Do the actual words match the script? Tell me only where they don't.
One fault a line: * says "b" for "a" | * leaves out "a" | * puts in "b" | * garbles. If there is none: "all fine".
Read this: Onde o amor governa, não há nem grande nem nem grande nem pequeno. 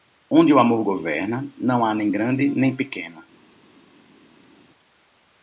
* leaves out "nem grande nem"